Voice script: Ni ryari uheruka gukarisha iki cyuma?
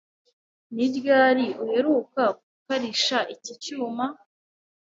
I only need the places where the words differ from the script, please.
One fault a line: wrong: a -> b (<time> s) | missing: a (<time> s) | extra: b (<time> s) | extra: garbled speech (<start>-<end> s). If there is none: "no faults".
no faults